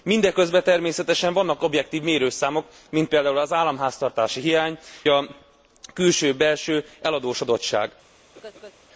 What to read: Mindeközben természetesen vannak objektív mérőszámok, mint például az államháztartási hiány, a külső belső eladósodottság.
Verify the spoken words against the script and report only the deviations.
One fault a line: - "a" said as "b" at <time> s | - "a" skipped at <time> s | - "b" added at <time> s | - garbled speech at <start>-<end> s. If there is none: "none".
none